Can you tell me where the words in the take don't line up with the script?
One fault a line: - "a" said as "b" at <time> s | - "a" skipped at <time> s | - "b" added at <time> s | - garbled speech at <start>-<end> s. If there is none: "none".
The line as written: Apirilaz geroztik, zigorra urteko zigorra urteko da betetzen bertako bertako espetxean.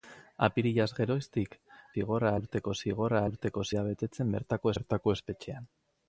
none